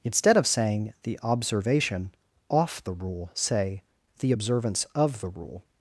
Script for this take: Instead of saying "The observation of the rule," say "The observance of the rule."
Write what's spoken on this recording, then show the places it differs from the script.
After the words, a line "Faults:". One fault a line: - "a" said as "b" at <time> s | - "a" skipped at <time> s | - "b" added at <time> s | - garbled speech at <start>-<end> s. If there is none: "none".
Instead of saying "The observation off the rule," say "The observance of the rule."
Faults:
- "of" said as "off" at 2.5 s